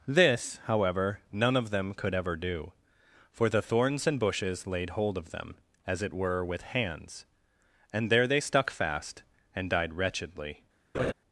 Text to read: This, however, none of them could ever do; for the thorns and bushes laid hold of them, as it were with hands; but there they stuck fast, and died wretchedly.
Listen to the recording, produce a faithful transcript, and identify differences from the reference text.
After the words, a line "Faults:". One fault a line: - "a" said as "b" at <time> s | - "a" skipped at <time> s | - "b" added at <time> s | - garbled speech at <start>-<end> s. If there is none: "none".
This, however, none of them could ever do; for the thorns and bushes laid hold of them, as it were with hands; and there they stuck fast, and died wretchedly.
Faults:
- "but" said as "and" at 7.9 s